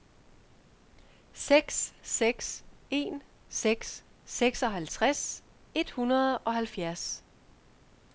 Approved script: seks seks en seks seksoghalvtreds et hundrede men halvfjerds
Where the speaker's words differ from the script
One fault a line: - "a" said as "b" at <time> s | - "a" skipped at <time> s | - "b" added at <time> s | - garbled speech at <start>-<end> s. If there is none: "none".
- "men" said as "og" at 6.4 s